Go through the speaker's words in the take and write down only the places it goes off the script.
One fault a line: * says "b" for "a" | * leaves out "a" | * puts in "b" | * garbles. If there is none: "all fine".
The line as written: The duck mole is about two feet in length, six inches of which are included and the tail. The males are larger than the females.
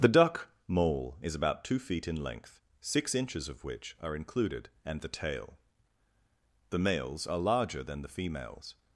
all fine